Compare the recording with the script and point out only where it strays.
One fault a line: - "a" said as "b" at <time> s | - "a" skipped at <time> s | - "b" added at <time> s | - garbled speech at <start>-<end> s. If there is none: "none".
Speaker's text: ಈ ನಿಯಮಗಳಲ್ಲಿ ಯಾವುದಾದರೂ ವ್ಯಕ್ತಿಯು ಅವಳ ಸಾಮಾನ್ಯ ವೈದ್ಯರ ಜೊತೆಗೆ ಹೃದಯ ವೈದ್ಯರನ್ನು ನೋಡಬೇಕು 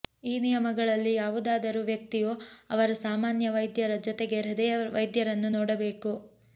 - "ಅವಳ" said as "ಅವರ" at 2.7 s